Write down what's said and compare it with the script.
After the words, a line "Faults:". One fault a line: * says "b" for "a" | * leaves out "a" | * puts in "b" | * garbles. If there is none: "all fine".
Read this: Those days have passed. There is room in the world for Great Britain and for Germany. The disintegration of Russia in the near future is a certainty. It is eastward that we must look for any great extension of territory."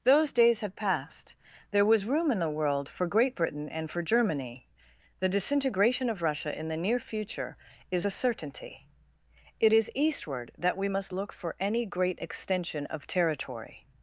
Those days have passed. There was room in the world for Great Britain and for Germany. The disintegration of Russia in the near future is a certainty. It is eastward that we must look for any great extension of territory."
Faults:
* says "was" for "is"